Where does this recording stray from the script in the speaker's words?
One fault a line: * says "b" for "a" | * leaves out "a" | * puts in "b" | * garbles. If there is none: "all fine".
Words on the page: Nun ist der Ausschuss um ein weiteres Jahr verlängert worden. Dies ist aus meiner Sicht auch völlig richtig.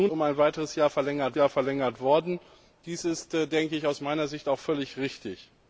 * leaves out "ist der Ausschuss"
* puts in "Jahr verlängert"